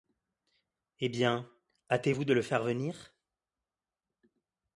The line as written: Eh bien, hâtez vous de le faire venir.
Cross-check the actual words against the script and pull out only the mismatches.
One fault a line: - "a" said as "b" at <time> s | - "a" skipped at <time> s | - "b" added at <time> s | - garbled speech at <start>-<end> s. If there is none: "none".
none